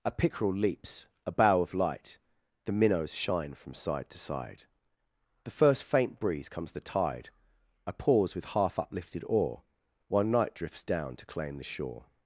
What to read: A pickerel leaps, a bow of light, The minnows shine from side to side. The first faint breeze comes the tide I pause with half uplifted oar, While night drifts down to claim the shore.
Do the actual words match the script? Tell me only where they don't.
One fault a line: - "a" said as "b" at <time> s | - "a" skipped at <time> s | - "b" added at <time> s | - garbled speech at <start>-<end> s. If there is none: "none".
none